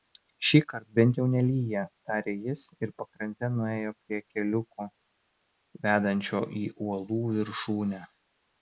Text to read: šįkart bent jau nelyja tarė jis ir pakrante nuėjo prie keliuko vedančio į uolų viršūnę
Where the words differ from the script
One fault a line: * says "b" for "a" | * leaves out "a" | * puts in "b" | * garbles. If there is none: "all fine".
all fine